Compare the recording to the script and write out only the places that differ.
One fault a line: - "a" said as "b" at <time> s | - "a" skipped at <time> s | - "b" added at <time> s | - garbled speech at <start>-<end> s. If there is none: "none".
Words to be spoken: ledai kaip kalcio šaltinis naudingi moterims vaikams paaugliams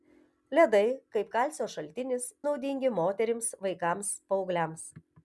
none